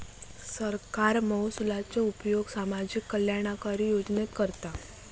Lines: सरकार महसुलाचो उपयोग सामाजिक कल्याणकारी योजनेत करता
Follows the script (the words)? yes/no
yes